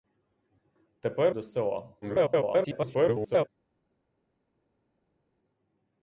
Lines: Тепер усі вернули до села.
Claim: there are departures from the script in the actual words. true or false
true